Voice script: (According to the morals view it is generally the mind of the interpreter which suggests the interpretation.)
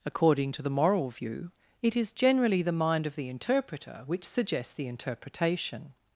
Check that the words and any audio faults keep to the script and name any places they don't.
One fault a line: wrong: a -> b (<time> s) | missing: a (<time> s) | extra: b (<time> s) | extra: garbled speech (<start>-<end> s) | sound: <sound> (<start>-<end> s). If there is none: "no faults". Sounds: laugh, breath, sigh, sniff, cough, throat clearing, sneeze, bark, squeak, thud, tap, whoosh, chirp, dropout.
wrong: morals -> moral (0.7 s)